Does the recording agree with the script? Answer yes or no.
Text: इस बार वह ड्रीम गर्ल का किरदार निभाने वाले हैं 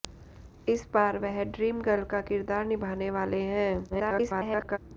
no